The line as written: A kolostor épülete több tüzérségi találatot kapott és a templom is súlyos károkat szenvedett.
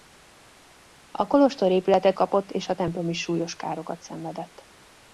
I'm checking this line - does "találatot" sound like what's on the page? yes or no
no